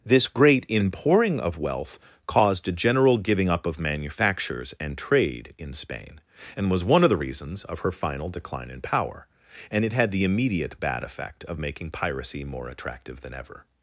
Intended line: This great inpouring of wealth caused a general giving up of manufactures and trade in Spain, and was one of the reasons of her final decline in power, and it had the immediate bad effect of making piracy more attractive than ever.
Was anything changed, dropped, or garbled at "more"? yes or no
no